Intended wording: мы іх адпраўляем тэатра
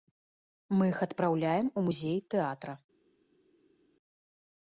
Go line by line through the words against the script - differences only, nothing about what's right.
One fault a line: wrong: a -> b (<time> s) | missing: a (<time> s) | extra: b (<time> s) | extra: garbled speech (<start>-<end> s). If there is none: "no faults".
extra: у музей (1.8 s)